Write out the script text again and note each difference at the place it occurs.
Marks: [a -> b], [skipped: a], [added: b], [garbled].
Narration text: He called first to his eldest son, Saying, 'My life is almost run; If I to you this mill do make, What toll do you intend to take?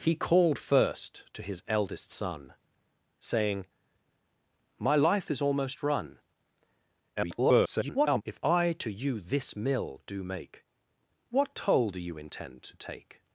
He called first to his eldest son, Saying, 'My life is almost run; [garbled] If I to you this mill do make, What toll do you intend to take?